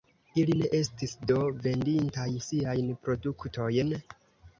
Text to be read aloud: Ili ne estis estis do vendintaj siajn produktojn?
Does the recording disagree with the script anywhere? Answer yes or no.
yes